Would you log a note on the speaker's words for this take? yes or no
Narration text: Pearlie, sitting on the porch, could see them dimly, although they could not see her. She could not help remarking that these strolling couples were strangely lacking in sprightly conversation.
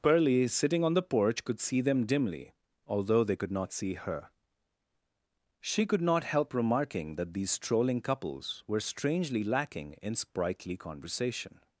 no